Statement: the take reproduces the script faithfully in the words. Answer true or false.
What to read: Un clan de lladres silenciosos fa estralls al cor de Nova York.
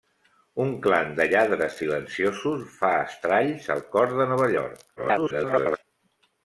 false